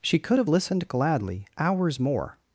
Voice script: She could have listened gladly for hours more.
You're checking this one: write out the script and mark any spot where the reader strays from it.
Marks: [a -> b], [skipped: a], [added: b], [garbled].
She could have listened gladly [skipped: for] hours more.